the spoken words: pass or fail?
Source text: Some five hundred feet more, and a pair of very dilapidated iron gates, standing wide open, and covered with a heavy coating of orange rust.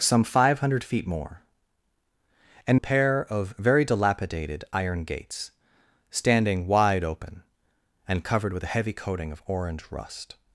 pass